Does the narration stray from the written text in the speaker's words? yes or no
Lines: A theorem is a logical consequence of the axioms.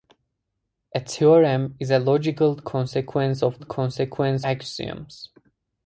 yes